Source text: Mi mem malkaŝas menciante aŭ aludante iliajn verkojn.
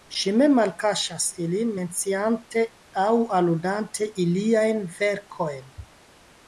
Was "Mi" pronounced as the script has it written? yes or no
no